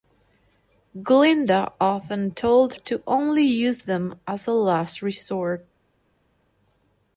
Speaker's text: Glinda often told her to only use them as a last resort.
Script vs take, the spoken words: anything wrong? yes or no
yes